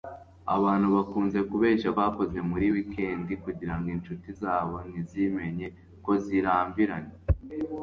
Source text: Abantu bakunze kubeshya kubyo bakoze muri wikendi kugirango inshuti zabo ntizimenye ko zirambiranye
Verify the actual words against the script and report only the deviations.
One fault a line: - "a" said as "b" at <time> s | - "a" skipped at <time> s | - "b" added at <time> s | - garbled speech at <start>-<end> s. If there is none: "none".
- "kubyo" skipped at 1.9 s